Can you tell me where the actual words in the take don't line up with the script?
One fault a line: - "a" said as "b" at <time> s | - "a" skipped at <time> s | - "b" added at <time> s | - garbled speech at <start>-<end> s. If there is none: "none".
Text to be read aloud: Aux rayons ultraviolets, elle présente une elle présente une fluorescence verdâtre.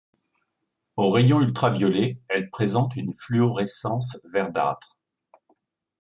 - "elle présente une" skipped at 3.1 s